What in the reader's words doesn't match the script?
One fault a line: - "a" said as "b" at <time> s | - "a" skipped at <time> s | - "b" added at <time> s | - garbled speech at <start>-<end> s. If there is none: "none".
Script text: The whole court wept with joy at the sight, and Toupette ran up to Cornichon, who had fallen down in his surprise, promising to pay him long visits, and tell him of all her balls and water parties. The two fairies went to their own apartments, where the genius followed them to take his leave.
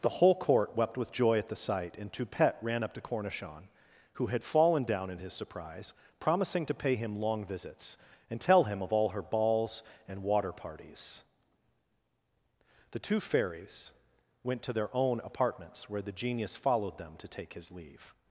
none